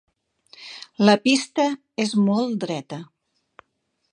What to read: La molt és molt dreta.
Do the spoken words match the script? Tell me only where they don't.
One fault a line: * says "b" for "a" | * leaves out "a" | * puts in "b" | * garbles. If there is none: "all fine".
* says "pista" for "molt"